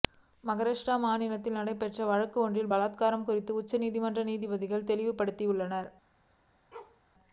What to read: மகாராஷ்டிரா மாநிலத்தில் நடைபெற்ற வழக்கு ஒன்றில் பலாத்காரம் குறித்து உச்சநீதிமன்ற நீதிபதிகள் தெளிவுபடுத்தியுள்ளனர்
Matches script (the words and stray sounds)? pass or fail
fail